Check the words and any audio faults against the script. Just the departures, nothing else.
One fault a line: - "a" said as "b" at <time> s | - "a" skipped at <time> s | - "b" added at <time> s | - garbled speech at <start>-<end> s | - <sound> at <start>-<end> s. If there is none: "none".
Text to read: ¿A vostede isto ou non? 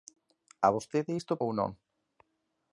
none